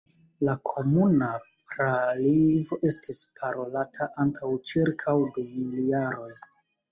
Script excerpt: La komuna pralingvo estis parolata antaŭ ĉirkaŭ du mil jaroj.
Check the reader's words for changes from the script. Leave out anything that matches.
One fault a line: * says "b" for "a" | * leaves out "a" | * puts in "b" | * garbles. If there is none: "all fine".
all fine